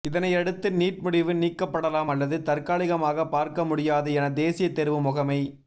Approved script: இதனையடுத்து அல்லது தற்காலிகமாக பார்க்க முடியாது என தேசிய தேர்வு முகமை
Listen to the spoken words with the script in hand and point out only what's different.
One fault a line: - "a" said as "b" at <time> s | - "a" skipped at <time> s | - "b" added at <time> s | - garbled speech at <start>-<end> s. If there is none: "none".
- "நீட் முடிவு நீக்கப்படலாம்" added at 0.7 s